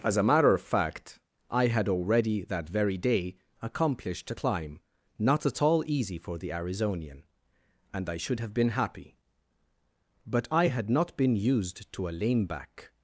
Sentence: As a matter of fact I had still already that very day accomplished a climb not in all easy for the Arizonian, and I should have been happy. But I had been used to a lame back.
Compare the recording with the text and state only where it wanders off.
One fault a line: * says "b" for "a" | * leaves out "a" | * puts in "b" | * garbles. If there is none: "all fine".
* leaves out "still"
* says "at" for "in"
* puts in "not"